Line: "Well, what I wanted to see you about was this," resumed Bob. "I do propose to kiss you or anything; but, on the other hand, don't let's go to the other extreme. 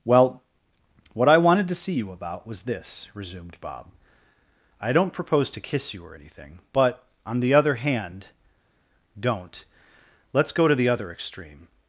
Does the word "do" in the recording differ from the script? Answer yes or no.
yes